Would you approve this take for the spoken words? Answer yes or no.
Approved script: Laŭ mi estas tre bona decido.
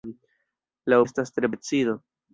no